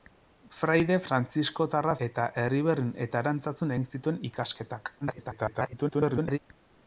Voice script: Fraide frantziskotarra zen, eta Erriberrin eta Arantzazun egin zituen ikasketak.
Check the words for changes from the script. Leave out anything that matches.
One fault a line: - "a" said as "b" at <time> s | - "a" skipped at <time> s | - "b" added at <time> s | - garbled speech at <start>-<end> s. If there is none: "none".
- "zen" skipped at 2.0 s
- garbled speech at 5.0-6.4 s